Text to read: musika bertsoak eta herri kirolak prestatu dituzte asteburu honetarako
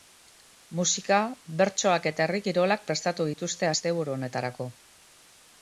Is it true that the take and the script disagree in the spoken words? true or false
false